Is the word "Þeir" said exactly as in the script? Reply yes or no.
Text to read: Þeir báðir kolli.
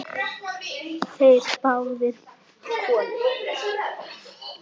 yes